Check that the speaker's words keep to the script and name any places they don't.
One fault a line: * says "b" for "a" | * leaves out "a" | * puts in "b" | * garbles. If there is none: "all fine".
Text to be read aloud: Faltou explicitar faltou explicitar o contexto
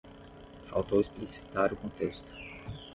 * leaves out "faltou explicitar"